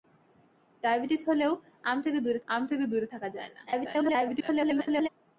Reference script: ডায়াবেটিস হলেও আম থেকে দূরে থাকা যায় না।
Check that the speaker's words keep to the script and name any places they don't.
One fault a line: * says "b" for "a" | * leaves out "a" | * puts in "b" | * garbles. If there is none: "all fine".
* puts in "আম থেকে দূরে"
* garbles